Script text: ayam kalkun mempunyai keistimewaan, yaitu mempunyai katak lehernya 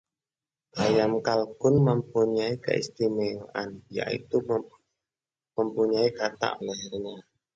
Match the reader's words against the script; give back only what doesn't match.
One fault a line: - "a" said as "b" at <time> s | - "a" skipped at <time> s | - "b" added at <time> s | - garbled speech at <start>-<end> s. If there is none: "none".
none